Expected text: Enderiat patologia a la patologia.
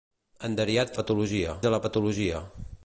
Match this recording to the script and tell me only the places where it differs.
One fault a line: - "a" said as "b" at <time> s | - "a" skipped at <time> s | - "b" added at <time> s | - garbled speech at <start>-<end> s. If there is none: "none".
none